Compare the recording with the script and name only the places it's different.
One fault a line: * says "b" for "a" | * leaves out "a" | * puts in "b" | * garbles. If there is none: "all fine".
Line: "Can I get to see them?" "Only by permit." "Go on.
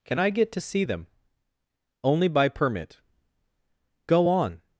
all fine